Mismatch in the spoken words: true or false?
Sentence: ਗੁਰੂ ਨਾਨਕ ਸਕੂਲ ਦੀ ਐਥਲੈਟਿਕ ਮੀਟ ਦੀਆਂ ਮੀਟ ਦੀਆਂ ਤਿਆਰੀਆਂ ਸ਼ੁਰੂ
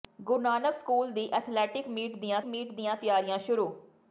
false